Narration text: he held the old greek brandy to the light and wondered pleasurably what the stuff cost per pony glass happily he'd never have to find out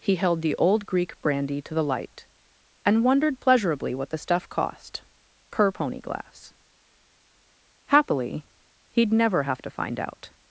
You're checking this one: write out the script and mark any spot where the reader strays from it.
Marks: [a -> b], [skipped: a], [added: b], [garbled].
he held the old greek brandy to the light and wondered pleasurably what the stuff cost per pony glass happily he'd never have to find out